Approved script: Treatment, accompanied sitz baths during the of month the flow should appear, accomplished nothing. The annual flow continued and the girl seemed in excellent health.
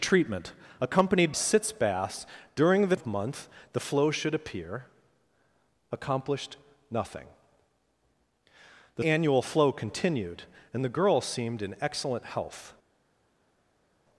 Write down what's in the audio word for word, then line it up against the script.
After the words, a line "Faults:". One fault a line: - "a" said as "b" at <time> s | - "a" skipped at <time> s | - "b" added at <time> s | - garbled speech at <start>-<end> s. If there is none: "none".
Treatment, accompanied sitz baths during the of month the flow should appear, accomplished nothing. The annual flow continued and the girl seemed in excellent health.
Faults:
none